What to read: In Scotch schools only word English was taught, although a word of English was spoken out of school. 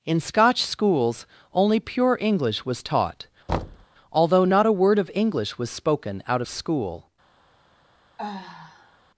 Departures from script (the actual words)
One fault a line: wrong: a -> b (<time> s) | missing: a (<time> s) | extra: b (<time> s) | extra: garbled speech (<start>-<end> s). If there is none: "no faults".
wrong: word -> pure (1.8 s)
extra: not (4.4 s)